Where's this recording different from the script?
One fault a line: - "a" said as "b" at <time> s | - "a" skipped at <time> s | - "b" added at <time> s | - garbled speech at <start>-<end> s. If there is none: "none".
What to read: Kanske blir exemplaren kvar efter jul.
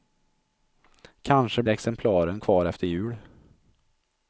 - "blir" skipped at 1.6 s